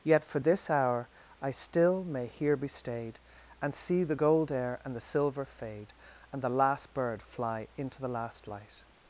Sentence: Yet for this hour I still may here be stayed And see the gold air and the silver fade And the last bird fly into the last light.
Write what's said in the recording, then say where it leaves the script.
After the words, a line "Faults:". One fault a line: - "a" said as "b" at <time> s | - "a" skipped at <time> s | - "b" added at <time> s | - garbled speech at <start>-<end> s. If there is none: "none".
Yet for this hour I still may here be stayed And see the gold air and the silver fade And the last bird fly into the last light.
Faults:
none